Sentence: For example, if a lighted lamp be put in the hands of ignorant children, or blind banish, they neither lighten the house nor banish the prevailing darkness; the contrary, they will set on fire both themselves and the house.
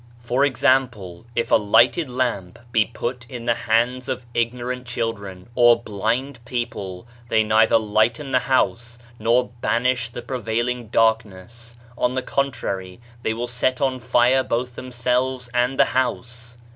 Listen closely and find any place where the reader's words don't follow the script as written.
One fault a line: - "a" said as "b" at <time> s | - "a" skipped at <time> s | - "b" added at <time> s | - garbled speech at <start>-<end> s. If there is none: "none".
- "banish" said as "people" at 6.5 s
- "on" added at 12.0 s